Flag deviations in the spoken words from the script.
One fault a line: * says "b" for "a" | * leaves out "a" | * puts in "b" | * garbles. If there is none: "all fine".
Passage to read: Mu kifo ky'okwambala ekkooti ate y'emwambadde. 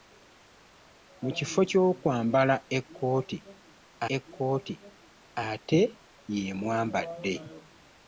* puts in "ekkooti"